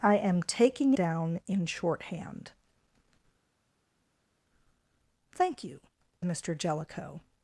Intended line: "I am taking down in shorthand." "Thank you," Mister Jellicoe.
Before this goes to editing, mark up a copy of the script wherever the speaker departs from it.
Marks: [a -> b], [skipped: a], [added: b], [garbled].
"I am taking down in shorthand." "Thank you," Mister Jellicoe.